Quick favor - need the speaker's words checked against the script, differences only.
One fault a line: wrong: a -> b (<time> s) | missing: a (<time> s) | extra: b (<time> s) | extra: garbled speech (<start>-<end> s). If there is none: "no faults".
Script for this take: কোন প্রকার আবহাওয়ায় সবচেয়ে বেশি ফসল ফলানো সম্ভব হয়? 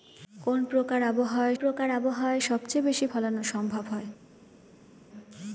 extra: প্রকার আবহাওয়ায় (1.5 s)
missing: ফসল (3.0 s)